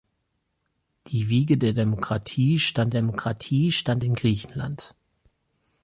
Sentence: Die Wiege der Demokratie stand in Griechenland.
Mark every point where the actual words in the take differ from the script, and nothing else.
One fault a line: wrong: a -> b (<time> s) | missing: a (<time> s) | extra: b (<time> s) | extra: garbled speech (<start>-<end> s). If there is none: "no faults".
extra: Demokratie stand (2.9 s)